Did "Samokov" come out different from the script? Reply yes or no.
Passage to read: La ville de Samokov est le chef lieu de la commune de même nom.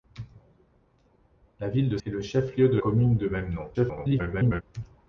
yes